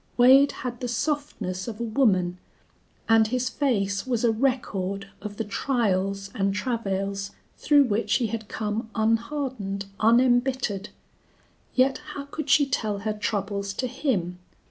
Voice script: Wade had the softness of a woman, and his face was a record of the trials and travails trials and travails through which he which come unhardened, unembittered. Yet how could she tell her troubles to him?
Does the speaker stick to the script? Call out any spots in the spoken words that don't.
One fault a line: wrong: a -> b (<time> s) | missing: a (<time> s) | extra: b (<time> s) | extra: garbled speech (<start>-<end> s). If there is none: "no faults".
missing: trials and travails (7.3 s)
wrong: which -> had (8.2 s)